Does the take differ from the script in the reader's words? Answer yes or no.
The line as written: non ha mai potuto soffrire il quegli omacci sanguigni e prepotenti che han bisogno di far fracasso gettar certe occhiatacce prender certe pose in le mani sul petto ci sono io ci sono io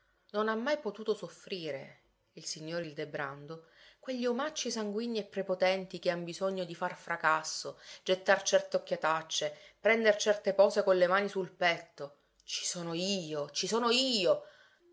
yes